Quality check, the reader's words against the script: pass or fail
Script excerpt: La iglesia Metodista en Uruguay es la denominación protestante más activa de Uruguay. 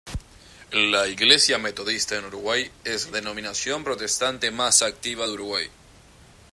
fail